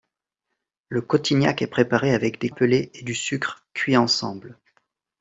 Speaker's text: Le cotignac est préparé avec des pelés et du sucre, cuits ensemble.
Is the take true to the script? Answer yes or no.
yes